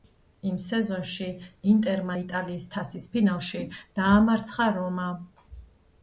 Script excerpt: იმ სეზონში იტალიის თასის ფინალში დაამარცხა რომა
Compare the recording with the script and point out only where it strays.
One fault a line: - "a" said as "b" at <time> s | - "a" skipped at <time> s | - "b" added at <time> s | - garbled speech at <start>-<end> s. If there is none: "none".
- "ინტერმა" added at 1.7 s